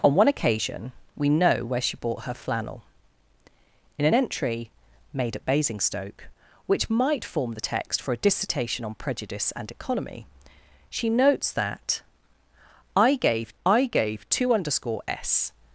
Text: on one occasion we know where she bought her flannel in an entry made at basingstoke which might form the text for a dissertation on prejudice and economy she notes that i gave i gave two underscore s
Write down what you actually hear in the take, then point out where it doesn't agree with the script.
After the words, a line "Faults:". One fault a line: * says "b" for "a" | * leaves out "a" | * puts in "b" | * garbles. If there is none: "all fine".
on one occasion we know where she bought her flannel in an entry made at basingstoke which might form the text for a dissertation on prejudice and economy she notes that i gave i gave two underscore s
Faults:
all fine